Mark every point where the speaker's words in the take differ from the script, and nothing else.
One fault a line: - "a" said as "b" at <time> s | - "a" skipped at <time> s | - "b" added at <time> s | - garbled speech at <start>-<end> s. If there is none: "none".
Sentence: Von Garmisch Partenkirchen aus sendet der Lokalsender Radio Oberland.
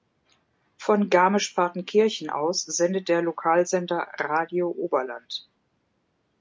none